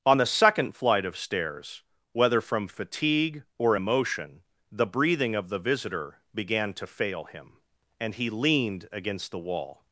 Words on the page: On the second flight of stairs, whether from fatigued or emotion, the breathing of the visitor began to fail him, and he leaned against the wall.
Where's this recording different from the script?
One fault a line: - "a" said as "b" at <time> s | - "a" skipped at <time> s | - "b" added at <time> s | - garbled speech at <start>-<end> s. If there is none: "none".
- "fatigued" said as "fatigue" at 2.7 s